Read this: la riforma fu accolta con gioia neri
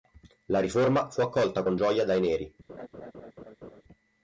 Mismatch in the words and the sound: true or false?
true